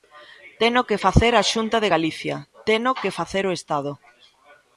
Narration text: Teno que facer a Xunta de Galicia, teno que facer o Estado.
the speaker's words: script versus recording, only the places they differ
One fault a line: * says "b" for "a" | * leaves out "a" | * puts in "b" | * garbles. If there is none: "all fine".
all fine